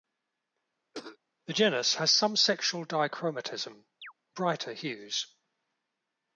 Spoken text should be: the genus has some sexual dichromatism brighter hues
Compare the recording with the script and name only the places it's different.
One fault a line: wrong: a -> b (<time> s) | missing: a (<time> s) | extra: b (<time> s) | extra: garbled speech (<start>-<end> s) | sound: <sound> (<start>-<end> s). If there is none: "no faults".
sound: cough (0.9-1.2 s)
sound: chirp (4.0-4.1 s)